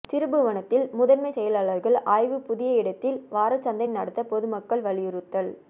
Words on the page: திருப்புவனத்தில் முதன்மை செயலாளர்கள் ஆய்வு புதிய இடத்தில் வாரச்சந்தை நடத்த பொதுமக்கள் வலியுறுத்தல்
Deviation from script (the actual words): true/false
false